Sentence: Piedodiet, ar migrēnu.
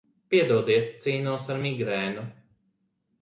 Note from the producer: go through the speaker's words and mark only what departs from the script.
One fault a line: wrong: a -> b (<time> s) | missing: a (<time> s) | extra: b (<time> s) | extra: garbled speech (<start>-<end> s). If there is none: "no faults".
extra: cīnos (1.0 s)